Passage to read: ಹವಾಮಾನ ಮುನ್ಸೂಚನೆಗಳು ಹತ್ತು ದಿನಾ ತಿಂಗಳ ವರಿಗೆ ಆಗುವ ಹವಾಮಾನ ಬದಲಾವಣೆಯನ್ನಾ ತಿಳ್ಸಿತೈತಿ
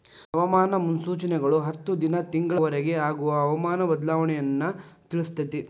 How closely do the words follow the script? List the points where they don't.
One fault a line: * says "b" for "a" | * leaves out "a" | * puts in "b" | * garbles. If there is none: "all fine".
all fine